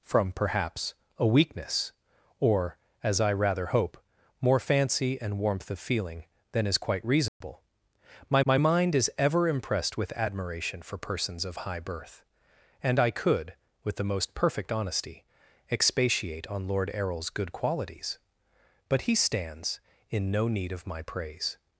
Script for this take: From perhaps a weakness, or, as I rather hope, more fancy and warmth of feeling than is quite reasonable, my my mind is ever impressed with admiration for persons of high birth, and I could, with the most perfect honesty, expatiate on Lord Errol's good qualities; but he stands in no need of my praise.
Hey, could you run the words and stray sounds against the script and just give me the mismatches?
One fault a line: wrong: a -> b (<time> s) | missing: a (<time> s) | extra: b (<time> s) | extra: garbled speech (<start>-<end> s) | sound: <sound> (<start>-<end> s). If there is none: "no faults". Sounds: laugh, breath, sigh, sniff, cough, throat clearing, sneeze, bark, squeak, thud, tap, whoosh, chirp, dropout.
sound: dropout (7.3-7.4 s)